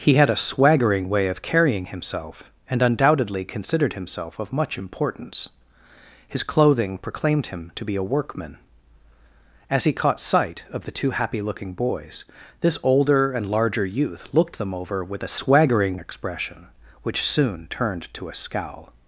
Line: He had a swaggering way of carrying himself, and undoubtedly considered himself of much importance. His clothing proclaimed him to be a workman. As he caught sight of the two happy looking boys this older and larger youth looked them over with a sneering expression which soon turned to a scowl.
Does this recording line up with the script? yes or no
no